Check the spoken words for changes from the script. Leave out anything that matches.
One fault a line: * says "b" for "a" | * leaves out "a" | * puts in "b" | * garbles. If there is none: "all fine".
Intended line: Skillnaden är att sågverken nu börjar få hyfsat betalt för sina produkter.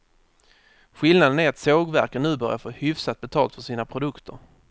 all fine